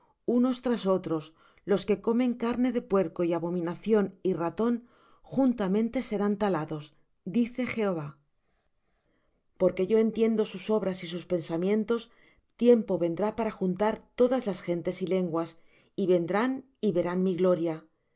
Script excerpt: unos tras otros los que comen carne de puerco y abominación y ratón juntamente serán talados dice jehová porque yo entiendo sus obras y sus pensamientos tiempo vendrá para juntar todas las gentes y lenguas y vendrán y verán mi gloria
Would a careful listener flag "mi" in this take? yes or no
no